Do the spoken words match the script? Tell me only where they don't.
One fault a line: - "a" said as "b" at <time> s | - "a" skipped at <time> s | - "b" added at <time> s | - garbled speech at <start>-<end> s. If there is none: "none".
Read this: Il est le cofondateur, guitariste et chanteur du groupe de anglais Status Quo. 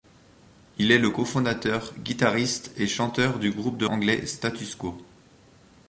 none